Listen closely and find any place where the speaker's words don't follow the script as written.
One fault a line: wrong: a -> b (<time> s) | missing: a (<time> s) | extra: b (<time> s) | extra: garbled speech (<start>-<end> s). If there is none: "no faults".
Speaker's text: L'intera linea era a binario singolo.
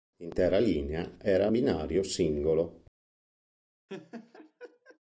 no faults